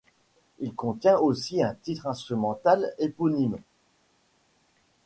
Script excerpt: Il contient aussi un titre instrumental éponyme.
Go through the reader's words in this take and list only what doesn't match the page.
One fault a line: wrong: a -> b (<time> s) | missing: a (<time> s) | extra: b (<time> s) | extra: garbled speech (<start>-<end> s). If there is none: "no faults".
no faults